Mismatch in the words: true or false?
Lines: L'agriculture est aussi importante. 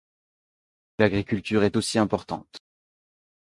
false